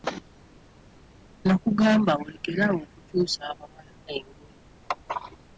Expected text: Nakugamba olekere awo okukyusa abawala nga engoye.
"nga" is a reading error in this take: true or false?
true